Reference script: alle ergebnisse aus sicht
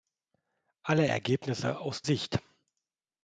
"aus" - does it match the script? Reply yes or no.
yes